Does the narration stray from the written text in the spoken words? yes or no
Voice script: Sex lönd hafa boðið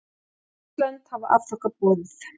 yes